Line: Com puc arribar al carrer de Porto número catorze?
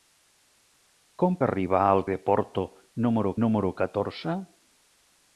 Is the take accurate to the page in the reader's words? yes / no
no